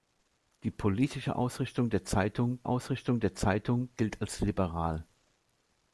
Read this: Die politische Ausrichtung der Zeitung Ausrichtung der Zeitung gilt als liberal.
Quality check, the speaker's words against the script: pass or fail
pass